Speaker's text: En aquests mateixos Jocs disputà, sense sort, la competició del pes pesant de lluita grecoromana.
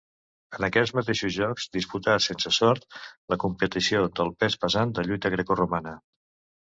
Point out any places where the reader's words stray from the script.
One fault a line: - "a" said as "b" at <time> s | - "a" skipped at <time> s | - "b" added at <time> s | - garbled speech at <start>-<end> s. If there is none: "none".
none